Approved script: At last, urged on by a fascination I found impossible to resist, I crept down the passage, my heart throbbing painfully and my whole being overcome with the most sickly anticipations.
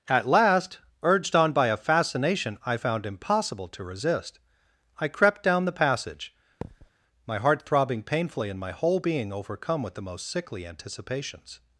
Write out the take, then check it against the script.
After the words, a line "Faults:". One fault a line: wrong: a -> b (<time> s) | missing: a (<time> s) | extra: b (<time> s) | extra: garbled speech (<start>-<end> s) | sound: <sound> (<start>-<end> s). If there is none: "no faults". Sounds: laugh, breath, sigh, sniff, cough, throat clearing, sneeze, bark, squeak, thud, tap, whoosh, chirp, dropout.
At last, urged on by a fascination I found impossible to resist, I crept down the passage, my heart throbbing painfully and my whole being overcome with the most sickly anticipations.
Faults:
sound: thud (6.6-6.9 s)